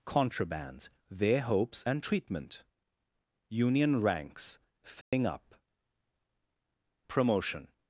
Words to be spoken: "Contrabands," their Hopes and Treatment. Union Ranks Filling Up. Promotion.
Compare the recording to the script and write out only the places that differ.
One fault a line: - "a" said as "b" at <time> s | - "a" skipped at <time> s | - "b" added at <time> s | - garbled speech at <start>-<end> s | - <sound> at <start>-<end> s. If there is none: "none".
- dropout at 5.0-5.1 s